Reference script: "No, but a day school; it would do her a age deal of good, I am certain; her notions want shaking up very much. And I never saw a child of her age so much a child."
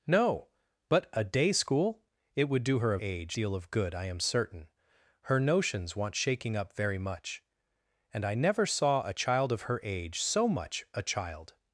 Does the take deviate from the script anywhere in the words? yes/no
no